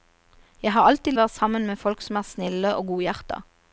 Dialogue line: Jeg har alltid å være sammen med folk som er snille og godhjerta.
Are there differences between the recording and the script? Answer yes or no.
no